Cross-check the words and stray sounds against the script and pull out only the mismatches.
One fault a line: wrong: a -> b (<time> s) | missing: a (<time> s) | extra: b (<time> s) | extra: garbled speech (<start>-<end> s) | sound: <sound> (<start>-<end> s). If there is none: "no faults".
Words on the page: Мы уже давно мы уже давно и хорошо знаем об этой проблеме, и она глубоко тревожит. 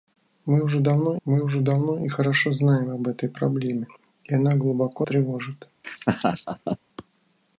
sound: laugh (5.8-6.8 s)